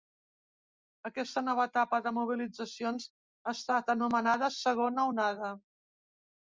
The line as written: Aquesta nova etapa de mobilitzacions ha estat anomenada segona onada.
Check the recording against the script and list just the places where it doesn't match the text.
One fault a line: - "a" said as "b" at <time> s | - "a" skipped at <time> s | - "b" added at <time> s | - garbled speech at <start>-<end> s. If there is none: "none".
none